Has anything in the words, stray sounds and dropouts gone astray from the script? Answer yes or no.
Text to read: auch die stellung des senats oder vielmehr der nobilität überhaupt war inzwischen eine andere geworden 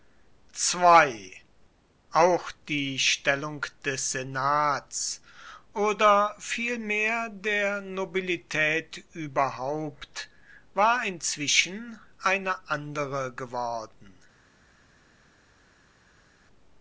no